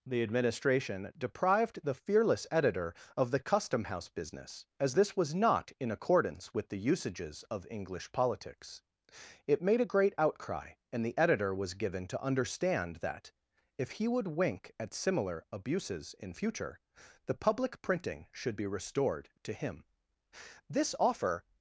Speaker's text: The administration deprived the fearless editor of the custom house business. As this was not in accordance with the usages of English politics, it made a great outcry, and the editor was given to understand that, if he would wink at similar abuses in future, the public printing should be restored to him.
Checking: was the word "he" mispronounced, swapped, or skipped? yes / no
no